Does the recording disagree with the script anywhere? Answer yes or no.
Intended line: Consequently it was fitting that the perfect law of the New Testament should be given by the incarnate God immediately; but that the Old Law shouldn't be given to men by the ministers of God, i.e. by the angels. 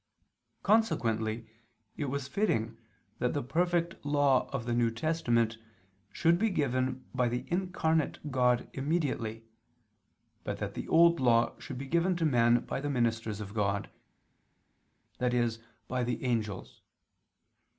yes